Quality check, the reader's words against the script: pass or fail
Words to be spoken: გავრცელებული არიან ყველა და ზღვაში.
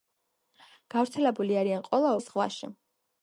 pass